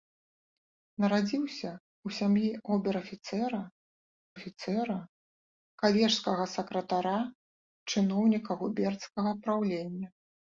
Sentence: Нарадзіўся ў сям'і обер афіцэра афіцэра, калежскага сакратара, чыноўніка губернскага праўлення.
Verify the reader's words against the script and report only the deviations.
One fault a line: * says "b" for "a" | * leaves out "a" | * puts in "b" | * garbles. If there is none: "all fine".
all fine